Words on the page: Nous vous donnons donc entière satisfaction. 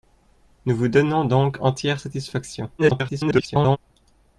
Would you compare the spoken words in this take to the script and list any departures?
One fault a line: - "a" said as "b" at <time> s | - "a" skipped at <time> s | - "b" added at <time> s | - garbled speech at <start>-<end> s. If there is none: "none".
- garbled speech at 2.8-3.8 s